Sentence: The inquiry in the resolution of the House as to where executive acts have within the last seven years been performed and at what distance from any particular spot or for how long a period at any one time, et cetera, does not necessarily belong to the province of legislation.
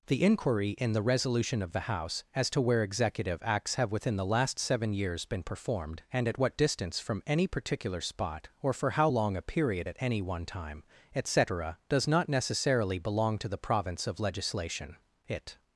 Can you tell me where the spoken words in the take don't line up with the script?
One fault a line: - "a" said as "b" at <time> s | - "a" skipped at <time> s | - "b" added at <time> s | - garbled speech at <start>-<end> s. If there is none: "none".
- "It" added at 15.3 s